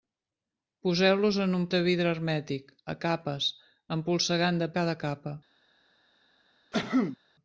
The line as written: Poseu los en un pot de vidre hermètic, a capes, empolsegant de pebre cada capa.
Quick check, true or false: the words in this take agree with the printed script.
false